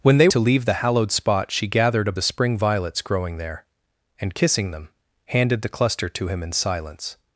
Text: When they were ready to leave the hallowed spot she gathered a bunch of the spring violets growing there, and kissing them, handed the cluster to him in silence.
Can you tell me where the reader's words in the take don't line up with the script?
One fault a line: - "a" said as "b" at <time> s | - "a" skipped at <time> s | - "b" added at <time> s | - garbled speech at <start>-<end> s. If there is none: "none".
- "were ready" skipped at 0.3 s
- "bunch of" skipped at 2.1 s